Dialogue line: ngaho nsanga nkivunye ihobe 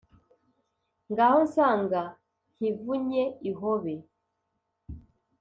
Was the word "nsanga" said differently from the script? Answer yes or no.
no